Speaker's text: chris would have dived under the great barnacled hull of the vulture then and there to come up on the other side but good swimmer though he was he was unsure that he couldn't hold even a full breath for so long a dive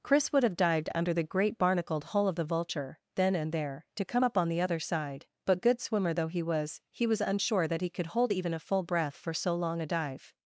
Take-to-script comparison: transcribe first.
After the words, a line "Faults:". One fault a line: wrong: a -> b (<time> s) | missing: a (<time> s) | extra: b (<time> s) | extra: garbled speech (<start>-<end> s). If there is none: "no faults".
chris would have dived under the great barnacled hull of the vulture then and there to come up on the other side but good swimmer though he was he was unsure that he could hold even a full breath for so long a dive
Faults:
wrong: couldn't -> could (7.9 s)